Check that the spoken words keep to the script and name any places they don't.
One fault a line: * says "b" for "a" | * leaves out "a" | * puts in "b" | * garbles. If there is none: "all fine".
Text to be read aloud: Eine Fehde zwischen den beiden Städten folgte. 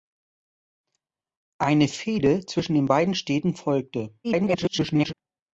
* garbles